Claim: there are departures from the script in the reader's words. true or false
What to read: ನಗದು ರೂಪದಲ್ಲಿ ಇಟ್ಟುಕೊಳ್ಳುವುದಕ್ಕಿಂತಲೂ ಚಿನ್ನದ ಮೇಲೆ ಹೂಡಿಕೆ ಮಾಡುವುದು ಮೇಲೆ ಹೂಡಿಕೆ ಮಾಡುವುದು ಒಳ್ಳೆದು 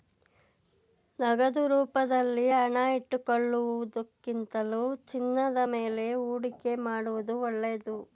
true